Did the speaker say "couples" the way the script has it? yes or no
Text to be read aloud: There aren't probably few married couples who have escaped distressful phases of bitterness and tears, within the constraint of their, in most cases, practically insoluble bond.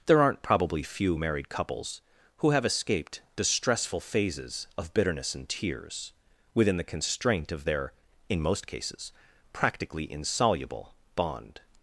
yes